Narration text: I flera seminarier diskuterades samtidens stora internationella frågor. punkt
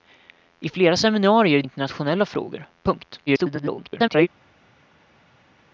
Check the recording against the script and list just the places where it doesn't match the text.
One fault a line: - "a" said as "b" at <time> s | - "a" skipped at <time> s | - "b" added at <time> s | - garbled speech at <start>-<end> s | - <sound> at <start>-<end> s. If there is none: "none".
- "diskuterades samtidens stora" skipped at 1.6 s
- garbled speech at 3.3-4.3 s